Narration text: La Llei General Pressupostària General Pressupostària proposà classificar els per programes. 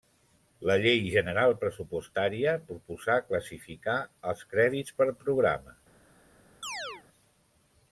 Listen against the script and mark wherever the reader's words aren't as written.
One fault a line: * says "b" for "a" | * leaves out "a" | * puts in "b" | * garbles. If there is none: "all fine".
* leaves out "General Pressupostària"
* puts in "crèdits"